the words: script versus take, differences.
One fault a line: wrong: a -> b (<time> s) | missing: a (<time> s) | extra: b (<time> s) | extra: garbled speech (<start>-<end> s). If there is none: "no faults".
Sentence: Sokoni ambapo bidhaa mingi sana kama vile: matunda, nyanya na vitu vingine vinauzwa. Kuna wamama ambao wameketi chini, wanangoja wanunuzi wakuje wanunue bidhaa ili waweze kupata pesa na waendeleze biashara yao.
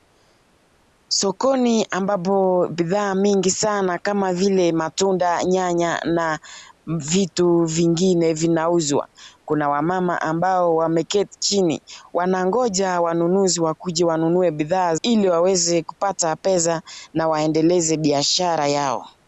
no faults